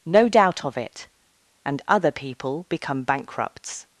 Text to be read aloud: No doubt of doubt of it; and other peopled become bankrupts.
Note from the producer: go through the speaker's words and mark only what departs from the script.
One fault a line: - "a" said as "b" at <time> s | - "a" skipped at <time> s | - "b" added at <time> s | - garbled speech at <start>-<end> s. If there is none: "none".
- "doubt of" skipped at 0.8 s
- "peopled" said as "people" at 2.1 s